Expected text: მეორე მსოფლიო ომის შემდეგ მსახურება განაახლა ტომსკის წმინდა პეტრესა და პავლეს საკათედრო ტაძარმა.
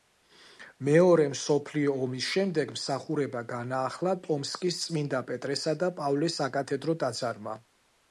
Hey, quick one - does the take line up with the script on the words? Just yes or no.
yes